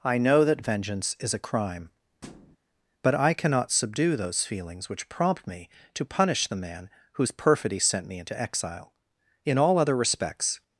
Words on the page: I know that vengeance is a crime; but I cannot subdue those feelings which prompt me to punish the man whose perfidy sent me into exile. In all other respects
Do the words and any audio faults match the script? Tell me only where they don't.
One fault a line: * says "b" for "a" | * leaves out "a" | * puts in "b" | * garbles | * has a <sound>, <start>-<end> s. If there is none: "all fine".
* has a thud, 2.2-2.6 s